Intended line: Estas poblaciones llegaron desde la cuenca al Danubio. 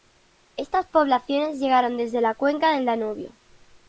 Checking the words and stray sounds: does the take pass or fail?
fail